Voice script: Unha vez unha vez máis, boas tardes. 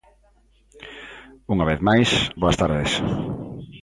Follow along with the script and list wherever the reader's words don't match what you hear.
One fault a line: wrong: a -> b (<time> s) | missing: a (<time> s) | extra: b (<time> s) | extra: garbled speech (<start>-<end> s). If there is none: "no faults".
missing: unha vez (1.8 s)